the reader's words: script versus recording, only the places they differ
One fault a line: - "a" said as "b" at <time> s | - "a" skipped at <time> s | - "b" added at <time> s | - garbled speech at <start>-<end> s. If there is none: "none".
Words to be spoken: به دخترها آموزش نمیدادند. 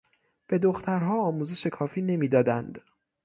- "کافی" added at 1.6 s